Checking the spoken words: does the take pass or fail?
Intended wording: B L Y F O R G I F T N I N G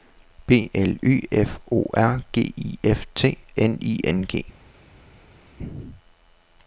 pass